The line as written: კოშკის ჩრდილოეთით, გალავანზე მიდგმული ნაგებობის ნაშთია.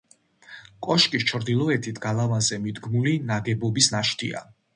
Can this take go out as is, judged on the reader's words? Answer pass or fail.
pass